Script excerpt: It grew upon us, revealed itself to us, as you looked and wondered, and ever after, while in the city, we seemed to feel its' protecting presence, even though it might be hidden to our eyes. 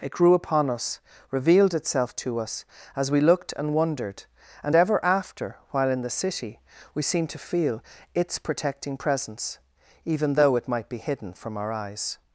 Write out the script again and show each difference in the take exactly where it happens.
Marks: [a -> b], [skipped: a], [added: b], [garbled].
It grew upon us, revealed itself to us, as [you -> we] looked and wondered, and ever after, while in the city, we seemed to feel its' protecting presence, even though it might be hidden [to -> from] our eyes.